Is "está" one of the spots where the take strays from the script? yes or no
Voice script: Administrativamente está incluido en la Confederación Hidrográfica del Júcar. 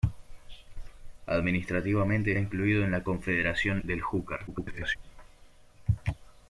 yes